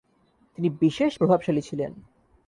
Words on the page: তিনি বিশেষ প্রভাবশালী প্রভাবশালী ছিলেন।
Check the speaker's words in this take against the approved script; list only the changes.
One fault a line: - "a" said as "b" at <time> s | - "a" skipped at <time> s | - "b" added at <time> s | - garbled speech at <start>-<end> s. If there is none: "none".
- "প্রভাবশালী" skipped at 1.6 s